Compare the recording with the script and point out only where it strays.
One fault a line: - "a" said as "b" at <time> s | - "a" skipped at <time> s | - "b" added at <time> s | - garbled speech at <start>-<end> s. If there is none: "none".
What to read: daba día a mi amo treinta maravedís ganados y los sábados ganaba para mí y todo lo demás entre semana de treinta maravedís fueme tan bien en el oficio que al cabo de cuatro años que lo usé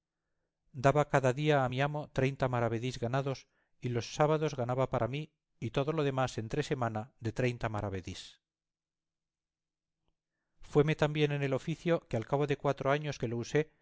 - "cada" added at 1.1 s